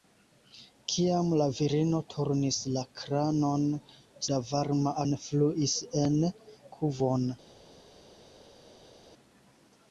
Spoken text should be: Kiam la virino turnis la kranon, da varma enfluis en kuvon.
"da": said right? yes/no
yes